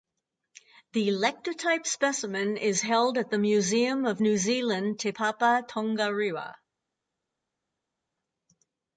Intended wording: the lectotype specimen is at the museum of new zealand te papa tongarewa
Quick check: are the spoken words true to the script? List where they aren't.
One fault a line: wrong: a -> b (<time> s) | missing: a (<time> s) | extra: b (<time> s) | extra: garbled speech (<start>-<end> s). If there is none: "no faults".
extra: held (2.8 s)